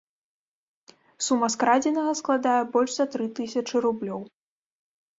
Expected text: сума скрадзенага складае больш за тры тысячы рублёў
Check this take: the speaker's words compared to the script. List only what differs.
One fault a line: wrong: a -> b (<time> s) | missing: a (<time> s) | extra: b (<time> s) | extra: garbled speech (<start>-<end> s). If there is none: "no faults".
no faults